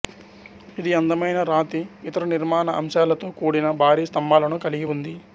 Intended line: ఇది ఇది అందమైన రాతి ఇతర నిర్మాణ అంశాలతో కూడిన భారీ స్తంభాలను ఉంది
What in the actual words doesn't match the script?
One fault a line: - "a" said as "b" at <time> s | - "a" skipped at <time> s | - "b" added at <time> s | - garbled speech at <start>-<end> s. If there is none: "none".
- "ఇది" skipped at 0.9 s
- "కలిగి" added at 4.7 s